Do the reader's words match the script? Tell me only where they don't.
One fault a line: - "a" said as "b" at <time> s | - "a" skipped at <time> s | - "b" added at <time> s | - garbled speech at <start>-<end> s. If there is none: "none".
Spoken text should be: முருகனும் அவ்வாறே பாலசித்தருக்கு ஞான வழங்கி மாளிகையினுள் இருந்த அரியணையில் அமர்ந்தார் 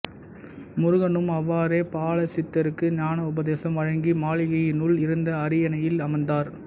- "உபதேசம்" added at 3.3 s